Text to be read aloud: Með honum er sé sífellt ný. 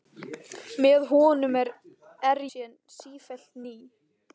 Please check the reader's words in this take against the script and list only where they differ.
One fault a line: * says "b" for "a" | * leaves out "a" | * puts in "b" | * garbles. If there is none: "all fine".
all fine